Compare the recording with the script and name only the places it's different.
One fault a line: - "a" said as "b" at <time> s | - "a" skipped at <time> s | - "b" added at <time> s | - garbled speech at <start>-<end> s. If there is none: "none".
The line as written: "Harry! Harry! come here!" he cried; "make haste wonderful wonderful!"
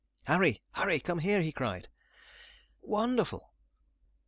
- "make haste wonderful" skipped at 1.9 s